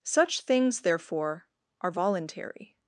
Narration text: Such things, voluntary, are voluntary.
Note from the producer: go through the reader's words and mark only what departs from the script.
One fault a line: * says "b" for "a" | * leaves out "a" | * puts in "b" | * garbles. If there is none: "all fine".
* says "therefore" for "voluntary"